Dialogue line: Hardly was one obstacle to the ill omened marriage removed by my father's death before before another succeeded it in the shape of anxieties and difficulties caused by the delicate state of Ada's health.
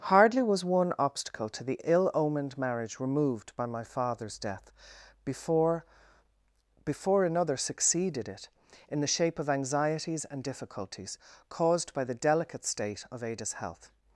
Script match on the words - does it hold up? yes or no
yes